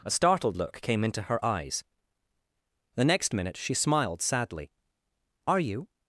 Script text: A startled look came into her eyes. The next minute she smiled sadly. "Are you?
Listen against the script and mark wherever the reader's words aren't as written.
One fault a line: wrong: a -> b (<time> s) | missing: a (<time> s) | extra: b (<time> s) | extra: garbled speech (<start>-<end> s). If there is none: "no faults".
no faults